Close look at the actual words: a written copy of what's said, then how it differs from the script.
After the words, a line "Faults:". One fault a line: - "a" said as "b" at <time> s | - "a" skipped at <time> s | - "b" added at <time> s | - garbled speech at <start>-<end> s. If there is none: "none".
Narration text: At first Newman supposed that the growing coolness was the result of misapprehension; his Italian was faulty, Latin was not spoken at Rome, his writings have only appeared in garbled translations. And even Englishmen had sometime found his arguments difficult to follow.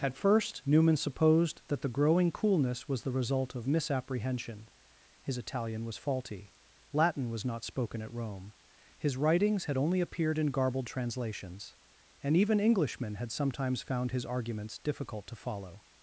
At first Newman supposed that the growing coolness was the result of misapprehension; his Italian was faulty, Latin was not spoken at Rome, his writings had only appeared in garbled translations. And even Englishmen had sometimes found his arguments difficult to follow.
Faults:
- "have" said as "had" at 9.6 s
- "sometime" said as "sometimes" at 13.3 s